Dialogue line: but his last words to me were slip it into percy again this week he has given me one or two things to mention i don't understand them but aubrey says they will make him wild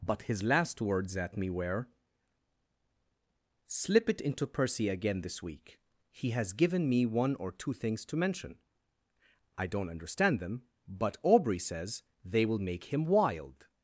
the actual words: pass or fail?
fail